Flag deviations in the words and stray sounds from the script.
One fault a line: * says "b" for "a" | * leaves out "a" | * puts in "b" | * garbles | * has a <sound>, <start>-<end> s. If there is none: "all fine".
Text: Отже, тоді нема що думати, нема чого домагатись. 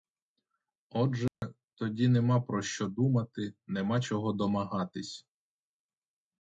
* has a dropout, 1.3-1.4 s
* puts in "про"